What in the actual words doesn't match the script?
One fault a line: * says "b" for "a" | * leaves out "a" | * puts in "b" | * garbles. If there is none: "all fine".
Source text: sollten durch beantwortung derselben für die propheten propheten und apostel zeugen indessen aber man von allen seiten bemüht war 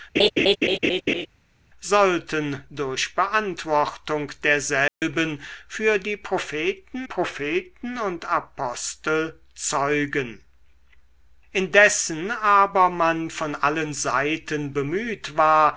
all fine